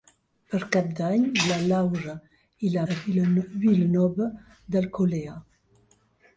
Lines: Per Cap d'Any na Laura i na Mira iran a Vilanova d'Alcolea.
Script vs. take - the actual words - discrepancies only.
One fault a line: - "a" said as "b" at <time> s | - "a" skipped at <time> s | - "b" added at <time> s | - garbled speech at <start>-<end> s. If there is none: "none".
- "Mira iran" skipped at 2.9 s